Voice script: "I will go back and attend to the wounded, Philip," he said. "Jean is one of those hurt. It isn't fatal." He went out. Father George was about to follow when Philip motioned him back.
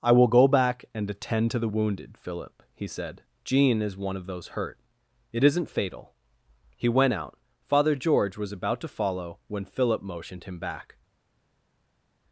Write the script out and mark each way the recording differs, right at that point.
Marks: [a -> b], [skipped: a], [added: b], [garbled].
"I will go back and attend to the wounded, Philip," he said. "Jean is one of those hurt. It isn't fatal." He went out. Father George was about to follow when Philip motioned him back.